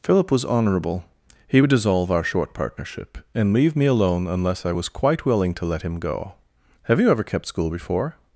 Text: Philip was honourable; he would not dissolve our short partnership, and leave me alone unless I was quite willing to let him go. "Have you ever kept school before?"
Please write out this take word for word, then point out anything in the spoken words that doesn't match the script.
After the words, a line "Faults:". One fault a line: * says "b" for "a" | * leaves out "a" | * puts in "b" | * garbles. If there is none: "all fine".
Philip was honourable; he would dissolve our short partnership, and leave me alone unless I was quite willing to let him go. "Have you ever kept school before?"
Faults:
* leaves out "not"